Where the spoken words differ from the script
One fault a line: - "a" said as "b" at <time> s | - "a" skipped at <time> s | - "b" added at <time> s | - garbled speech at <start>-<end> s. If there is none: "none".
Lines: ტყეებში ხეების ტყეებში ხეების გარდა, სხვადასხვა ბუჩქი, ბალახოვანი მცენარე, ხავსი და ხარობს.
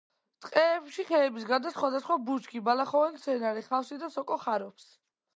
- "ტყეებში ხეების" skipped at 1.5 s
- "სოკო" added at 4.1 s